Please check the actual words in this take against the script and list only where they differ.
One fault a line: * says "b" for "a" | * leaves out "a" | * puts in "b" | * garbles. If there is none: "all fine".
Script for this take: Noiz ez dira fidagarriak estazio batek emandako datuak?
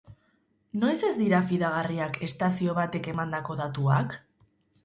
all fine